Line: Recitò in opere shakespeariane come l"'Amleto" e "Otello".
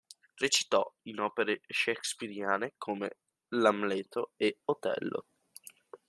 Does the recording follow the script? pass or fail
pass